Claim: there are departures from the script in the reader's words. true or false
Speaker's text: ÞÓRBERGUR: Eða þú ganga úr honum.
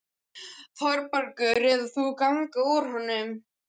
false